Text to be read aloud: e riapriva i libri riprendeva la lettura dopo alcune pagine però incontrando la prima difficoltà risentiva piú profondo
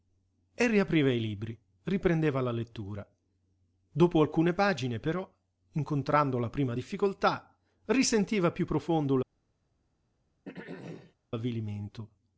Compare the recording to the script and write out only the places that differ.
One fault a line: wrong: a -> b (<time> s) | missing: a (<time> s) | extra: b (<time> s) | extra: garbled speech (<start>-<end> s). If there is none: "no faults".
no faults